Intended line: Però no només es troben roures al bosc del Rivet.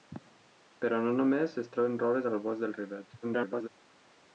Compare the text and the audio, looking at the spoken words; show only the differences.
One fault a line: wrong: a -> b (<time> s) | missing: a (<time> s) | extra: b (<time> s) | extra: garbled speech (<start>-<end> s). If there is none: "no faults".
extra: garbled speech (3.2-3.7 s)